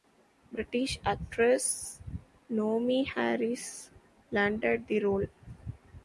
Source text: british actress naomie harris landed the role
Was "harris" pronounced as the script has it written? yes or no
yes